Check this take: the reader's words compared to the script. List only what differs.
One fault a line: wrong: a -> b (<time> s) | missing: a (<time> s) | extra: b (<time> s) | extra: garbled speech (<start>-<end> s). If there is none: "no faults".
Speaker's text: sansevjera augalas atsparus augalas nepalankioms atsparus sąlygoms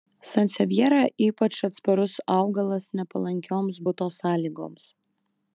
wrong: augalas -> ypač (1.2 s)
wrong: atsparus -> buto (3.9 s)